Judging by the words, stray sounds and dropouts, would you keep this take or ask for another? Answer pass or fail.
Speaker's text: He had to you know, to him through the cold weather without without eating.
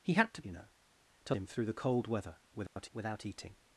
fail